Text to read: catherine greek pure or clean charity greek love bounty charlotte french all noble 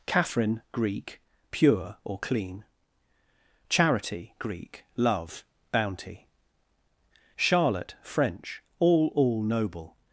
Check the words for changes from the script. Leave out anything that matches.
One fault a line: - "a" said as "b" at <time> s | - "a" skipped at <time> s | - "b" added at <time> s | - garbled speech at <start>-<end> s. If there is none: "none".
- "all" added at 9.1 s